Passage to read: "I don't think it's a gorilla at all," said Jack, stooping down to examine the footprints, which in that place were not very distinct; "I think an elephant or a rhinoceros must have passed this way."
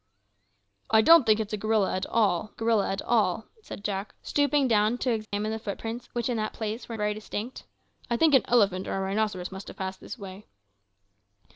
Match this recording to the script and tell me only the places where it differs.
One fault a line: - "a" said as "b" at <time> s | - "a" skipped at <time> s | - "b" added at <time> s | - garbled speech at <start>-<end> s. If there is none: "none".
- "gorilla at all" added at 2.5 s
- "not" skipped at 7.0 s